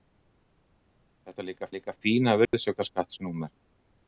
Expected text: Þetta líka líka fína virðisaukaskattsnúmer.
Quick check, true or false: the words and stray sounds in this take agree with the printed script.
false